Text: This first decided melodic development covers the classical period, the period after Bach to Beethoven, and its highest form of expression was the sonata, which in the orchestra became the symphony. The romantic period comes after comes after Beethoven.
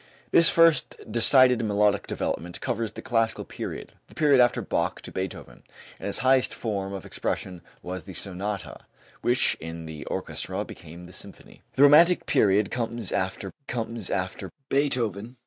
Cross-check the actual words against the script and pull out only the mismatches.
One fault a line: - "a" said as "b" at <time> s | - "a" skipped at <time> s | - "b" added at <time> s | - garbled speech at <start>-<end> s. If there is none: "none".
none